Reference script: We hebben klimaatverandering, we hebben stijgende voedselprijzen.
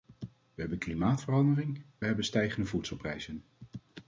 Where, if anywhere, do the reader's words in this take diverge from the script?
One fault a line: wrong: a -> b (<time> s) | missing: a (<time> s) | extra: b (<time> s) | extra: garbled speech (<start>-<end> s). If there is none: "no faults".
missing: we (1.8 s)